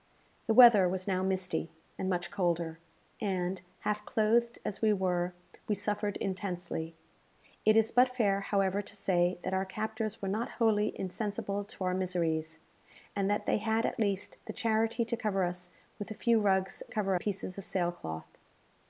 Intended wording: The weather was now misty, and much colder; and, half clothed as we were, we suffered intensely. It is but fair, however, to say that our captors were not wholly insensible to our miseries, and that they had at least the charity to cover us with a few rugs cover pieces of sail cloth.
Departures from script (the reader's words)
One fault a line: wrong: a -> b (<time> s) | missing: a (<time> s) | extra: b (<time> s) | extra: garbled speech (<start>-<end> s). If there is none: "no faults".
no faults